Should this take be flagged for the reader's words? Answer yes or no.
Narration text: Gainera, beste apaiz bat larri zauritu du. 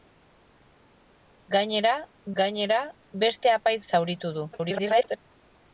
yes